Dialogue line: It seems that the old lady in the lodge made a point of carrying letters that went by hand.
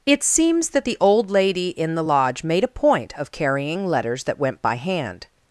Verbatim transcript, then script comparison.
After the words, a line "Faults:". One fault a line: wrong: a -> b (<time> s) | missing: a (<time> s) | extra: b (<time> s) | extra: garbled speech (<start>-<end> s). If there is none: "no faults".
It seems that the old lady in the lodge made a point of carrying letters that went by hand.
Faults:
no faults